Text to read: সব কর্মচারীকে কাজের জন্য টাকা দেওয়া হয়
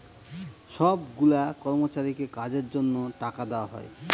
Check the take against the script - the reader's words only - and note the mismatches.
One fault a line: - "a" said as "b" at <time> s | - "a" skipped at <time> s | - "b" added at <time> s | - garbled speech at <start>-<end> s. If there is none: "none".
- "গুলা" added at 1.2 s